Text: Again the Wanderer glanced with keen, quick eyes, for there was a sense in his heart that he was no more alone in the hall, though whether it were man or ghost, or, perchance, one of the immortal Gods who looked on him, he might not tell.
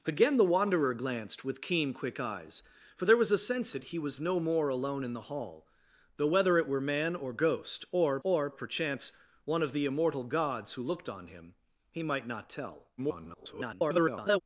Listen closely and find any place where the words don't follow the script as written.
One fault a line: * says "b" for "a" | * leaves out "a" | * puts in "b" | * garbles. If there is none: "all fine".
* leaves out "in his heart"
* puts in "or"
* garbles